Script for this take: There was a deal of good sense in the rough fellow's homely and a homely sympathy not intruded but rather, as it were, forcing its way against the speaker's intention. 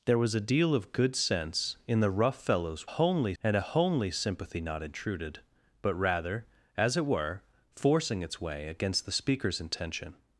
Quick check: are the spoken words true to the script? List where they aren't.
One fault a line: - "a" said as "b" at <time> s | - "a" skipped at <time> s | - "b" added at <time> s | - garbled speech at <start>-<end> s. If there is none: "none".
none